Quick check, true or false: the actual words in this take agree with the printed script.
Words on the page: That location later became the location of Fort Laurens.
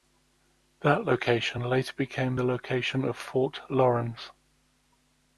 true